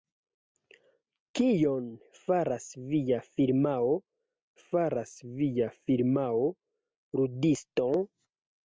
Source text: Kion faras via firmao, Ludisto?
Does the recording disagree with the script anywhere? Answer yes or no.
yes